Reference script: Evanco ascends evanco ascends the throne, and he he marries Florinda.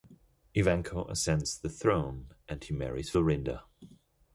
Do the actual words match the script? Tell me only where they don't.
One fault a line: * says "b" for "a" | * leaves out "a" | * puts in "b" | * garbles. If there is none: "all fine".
* leaves out "evanco ascends"
* leaves out "he"